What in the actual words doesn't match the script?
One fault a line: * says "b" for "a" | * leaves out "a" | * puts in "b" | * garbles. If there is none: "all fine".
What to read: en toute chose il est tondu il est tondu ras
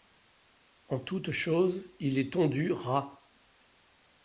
* leaves out "il est tondu"